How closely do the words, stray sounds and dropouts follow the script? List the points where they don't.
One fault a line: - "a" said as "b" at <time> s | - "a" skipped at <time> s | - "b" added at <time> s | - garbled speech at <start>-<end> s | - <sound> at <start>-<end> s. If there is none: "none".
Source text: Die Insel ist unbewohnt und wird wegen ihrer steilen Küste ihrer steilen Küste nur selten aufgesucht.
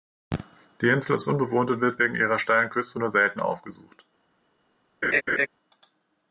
- "ihrer steilen Küste" skipped at 3.0 s
- laugh at 5.0-5.5 s